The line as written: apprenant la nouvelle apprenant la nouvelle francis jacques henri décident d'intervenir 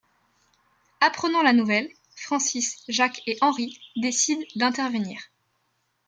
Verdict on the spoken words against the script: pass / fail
fail